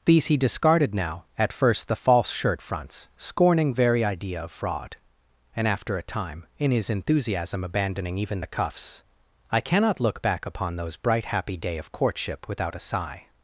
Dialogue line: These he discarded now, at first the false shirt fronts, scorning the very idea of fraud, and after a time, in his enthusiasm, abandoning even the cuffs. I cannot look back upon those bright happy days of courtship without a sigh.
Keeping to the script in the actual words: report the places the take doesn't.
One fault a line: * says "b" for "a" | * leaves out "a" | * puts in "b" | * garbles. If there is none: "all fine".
* leaves out "the"
* says "day" for "days"